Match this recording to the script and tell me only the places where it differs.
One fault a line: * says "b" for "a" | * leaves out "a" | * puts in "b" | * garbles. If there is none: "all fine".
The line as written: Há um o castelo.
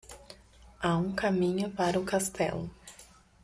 * puts in "caminho para"